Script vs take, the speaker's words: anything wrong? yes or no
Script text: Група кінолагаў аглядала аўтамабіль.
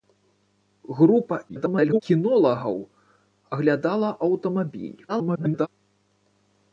yes